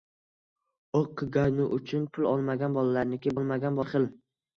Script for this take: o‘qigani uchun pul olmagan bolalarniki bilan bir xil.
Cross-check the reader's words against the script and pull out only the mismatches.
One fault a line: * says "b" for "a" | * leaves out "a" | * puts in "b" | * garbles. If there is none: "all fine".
* says "olmagan" for "bilan"